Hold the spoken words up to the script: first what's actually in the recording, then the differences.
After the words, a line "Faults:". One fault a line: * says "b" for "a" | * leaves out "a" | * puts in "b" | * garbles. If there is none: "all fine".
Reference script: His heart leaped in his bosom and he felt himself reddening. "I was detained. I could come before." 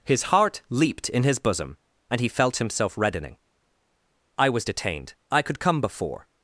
His heart leaped in his bosom and he felt himself reddening. "I was detained. I could come before."
Faults:
all fine